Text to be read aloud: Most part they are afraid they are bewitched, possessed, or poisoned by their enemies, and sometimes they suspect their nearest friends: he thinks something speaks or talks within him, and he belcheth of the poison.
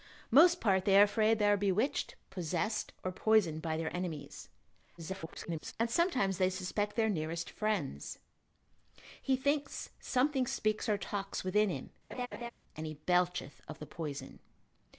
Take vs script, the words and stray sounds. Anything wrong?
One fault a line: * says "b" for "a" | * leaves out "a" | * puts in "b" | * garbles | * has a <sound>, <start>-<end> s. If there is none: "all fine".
* garbles
* has a laugh, 12.1-12.5 s